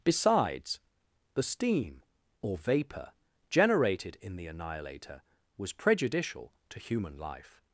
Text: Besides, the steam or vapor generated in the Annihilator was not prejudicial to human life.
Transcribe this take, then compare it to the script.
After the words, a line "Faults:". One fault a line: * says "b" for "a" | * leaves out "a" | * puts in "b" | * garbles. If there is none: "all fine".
Besides, the steam or vapor generated in the Annihilator was prejudicial to human life.
Faults:
* leaves out "not"